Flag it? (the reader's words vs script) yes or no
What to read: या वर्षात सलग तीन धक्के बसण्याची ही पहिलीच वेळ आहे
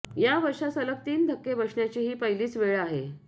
no